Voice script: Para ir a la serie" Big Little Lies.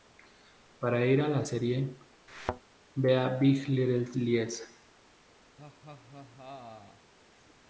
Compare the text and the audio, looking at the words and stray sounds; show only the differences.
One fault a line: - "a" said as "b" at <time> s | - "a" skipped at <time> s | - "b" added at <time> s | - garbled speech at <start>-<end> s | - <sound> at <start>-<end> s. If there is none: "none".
- thud at 2.3-2.6 s
- "vea" added at 2.9 s
- laugh at 5.6-7.1 s